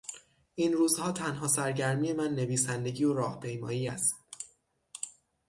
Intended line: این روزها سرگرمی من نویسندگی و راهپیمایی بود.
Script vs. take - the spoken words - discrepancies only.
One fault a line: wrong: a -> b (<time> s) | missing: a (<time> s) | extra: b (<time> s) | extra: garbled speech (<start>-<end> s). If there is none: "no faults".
extra: تنها (1.1 s)
wrong: بود -> است (3.9 s)